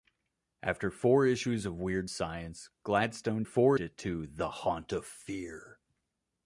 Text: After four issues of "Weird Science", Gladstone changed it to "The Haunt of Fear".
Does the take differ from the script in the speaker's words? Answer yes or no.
yes